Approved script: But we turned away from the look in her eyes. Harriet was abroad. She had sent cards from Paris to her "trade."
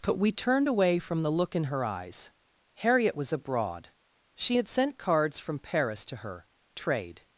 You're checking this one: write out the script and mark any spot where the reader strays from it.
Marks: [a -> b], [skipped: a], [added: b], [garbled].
But we turned away from the look in her eyes. Harriet was abroad. She had sent cards from Paris to her "trade."